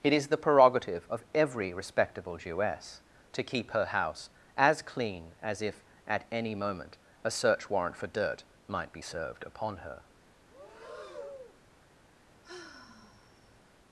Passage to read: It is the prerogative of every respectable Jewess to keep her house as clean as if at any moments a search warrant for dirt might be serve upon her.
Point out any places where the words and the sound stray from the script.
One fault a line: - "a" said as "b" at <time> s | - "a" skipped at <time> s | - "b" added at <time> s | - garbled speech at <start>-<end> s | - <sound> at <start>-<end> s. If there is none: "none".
- "moments" said as "moment" at 6.5 s
- "serve" said as "served" at 9.0 s
- breath at 10.5-11.6 s
- sigh at 12.4-13.6 s